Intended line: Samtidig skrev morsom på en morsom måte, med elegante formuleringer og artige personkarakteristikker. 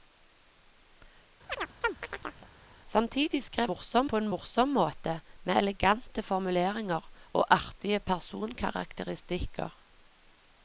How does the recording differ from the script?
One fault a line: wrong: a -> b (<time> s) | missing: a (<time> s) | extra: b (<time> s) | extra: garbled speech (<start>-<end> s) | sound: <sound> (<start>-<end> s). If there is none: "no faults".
sound: chirp (1.5-2.5 s)